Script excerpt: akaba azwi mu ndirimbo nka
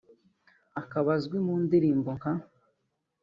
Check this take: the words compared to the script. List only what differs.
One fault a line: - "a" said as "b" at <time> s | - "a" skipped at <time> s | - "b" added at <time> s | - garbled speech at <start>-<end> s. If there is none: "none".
none